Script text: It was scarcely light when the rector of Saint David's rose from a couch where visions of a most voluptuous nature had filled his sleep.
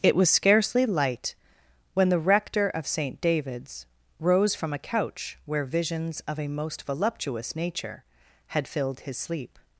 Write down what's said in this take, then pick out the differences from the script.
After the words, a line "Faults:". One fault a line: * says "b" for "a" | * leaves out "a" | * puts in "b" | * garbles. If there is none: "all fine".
It was scarcely light when the rector of Saint David's rose from a couch where visions of a most voluptuous nature had filled his sleep.
Faults:
all fine